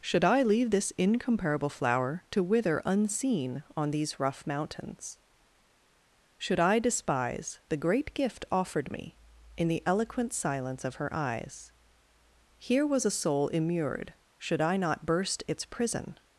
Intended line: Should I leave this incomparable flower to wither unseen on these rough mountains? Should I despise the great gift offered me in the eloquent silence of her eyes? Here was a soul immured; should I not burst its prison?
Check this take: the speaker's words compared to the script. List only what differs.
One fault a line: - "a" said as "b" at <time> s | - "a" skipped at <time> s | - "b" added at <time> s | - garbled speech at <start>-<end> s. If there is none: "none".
none